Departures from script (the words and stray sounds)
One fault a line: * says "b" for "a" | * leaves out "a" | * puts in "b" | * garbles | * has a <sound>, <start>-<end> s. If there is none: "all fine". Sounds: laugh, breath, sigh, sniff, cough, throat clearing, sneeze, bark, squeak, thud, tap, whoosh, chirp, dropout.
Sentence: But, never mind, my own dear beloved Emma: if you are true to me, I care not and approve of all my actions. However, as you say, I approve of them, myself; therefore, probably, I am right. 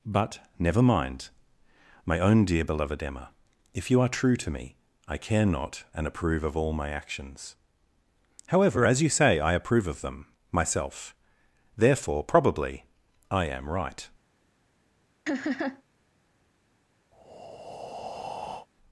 * has a laugh, 15.3-15.8 s
* has a breath, 17.1-18.7 s